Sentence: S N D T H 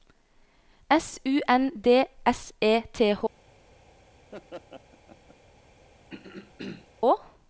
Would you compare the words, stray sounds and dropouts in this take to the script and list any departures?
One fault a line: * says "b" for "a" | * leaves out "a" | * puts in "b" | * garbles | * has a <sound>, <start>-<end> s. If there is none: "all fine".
* puts in "U"
* puts in "S E"
* has a laugh, 4.3-5.4 s
* has a throat clearing, 6.1-6.9 s